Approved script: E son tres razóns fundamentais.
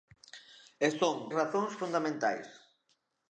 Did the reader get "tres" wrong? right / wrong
wrong